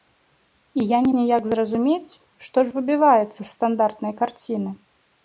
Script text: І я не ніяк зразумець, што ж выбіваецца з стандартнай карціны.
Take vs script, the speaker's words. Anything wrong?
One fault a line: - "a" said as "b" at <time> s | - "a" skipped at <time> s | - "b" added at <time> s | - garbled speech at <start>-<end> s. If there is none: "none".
none